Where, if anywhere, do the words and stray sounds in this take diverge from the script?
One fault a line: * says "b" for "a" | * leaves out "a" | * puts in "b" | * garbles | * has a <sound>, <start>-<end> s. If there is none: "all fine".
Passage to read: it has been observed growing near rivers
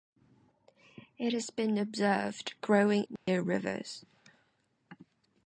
* has a dropout, 3.2-3.3 s